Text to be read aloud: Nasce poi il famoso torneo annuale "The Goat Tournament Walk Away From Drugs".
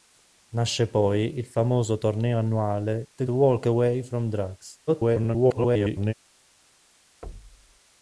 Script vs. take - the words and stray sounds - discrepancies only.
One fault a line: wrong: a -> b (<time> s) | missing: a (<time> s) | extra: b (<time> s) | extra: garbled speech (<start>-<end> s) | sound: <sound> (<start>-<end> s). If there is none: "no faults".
missing: Goat Tournament (3.3 s)
extra: garbled speech (4.9-6.1 s)
sound: thud (7.2-7.8 s)